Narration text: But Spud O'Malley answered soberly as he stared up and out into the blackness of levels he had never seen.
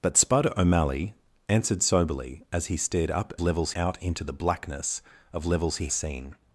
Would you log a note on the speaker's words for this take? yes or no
yes